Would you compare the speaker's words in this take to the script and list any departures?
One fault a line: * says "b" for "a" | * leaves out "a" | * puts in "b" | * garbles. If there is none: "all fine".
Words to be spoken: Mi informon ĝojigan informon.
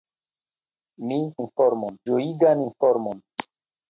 all fine